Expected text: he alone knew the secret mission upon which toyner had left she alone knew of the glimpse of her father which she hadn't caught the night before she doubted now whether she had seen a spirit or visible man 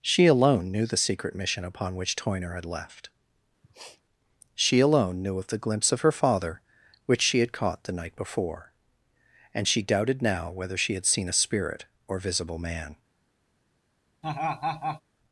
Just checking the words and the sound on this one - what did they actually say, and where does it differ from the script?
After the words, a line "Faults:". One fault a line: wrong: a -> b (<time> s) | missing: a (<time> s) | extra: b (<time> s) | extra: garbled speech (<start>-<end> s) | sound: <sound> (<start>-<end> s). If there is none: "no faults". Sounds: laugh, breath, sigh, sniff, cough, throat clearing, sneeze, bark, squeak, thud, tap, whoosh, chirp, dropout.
she alone knew the secret mission upon which toyner had left she alone knew of the glimpse of her father which she had caught the night before and she doubted now whether she had seen a spirit or visible man
Faults:
wrong: he -> she (0.0 s)
sound: sniff (3.6-4.0 s)
wrong: hadn't -> had (7.4 s)
extra: and (9.5 s)
sound: laugh (14.2-15.0 s)